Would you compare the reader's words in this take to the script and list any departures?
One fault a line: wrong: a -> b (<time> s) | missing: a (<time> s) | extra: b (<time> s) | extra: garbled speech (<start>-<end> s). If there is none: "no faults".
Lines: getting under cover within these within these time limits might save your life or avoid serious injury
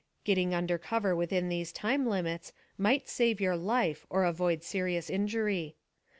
missing: within these (1.7 s)